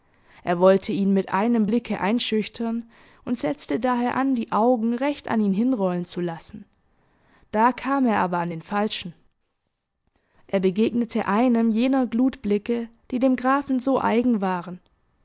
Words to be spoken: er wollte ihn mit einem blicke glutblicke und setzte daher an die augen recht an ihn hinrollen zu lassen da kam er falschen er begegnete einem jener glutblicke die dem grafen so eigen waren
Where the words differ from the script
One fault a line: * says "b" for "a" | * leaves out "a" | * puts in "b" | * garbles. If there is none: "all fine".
* says "einschüchtern" for "glutblicke"
* puts in "aber an den"